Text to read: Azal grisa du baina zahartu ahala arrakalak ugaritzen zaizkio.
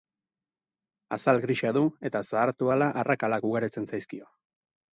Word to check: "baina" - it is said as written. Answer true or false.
false